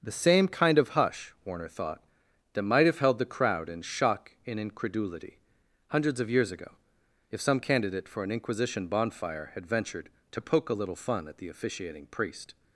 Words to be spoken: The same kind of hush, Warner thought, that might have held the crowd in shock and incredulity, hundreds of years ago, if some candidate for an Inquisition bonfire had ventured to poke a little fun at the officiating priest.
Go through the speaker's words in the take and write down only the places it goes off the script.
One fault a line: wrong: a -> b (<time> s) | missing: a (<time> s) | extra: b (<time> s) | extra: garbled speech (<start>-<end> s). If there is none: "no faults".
no faults